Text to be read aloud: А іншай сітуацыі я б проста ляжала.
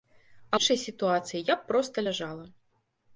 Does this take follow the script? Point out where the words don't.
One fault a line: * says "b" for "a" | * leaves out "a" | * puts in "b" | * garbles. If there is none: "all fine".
all fine